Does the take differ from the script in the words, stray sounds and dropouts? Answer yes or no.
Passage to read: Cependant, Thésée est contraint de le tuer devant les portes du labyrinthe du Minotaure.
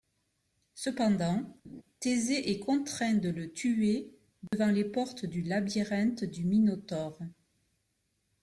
yes